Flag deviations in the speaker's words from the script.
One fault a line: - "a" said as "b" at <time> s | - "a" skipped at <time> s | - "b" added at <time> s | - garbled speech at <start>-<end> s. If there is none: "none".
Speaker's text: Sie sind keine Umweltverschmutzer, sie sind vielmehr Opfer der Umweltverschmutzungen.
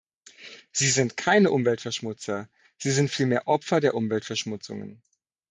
none